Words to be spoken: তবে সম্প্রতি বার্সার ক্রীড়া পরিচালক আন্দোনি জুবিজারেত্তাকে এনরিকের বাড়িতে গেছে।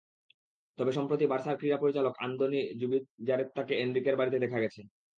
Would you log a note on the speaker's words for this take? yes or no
yes